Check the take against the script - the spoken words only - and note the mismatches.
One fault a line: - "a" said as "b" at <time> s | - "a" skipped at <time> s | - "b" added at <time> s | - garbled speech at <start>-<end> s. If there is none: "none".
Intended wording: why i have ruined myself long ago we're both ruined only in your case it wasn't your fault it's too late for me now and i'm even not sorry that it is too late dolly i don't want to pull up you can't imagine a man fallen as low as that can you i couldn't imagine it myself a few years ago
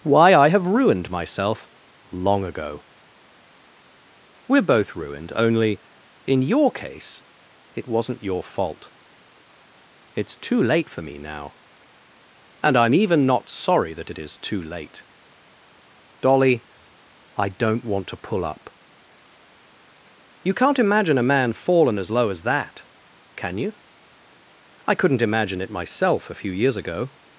none